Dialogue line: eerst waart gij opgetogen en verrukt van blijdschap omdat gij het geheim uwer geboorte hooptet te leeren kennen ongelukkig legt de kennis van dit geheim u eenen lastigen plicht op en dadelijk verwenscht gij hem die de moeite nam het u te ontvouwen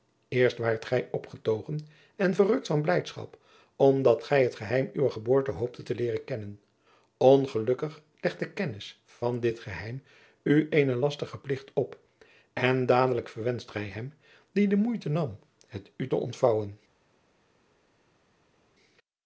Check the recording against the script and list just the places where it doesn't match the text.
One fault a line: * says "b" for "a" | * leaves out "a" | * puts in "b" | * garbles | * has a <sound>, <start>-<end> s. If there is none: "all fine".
all fine